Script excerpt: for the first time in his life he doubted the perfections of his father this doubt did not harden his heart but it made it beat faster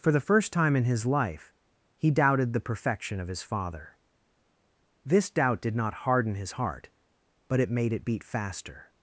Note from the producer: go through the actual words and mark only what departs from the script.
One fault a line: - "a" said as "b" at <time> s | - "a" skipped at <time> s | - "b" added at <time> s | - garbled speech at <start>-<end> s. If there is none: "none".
- "perfections" said as "perfection" at 2.6 s